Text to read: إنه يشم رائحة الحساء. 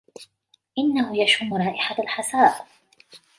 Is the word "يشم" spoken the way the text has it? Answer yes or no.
yes